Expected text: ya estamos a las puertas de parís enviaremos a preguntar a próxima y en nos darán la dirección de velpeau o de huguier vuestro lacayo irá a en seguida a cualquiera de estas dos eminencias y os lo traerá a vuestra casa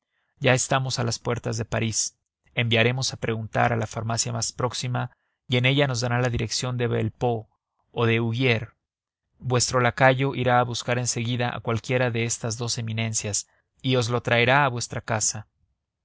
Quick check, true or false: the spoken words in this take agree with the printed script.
false